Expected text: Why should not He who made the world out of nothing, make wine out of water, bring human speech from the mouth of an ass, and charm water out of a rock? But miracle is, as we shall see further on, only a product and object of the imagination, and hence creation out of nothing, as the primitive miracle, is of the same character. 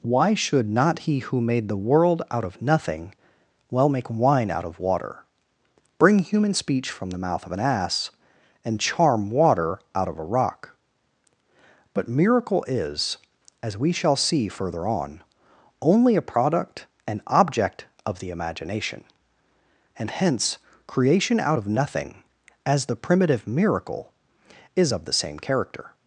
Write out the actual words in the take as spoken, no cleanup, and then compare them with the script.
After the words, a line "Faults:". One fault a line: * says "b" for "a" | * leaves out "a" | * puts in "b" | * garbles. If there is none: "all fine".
Why should not He who made the world out of nothing, well make wine out of water, bring human speech from the mouth of an ass, and charm water out of a rock? But miracle is, as we shall see further on, only a product and object of the imagination, and hence creation out of nothing, as the primitive miracle, is of the same character.
Faults:
* puts in "well"